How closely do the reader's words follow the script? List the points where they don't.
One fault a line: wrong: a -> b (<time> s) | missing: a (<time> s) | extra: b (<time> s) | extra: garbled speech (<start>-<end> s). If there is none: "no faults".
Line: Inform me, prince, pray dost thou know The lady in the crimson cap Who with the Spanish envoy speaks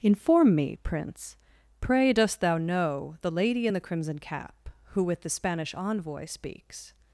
no faults